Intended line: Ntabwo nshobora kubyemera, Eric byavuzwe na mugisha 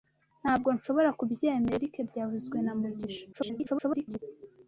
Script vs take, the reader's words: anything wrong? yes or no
yes